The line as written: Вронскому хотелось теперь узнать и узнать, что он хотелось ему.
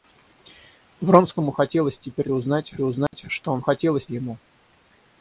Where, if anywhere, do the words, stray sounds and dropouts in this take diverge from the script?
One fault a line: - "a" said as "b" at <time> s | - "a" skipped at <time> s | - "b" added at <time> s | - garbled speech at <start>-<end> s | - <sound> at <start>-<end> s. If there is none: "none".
- dropout at 3.1-3.1 s